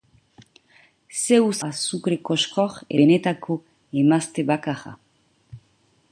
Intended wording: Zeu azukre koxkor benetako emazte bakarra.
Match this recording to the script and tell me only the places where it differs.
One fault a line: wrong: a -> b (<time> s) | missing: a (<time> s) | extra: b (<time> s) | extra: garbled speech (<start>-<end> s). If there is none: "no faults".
no faults